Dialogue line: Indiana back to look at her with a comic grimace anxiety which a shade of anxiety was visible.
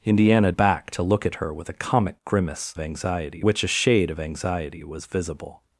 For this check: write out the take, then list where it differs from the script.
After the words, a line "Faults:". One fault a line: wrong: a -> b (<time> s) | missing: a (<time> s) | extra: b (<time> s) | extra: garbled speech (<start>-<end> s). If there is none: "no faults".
Indiana back to look at her with a comic grimace anxiety which a shade of anxiety was visible.
Faults:
no faults